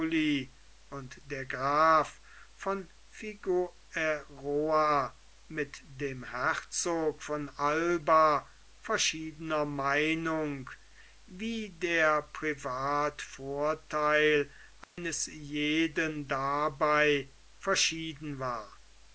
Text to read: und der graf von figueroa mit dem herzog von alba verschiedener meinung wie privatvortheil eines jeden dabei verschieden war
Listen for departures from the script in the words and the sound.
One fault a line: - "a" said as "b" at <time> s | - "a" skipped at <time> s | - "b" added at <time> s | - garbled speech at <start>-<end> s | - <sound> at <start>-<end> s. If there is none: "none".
- "der" added at 11.7 s
- dropout at 14.8-15.0 s